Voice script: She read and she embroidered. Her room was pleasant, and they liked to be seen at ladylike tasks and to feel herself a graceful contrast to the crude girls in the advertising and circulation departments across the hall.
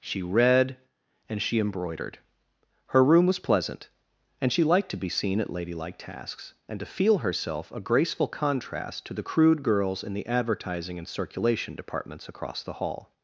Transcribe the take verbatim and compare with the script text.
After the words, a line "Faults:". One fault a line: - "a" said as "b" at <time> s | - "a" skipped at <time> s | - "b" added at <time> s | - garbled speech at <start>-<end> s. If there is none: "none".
She read and she embroidered. Her room was pleasant, and she liked to be seen at ladylike tasks and to feel herself a graceful contrast to the crude girls in the advertising and circulation departments across the hall.
Faults:
- "they" said as "she" at 4.5 s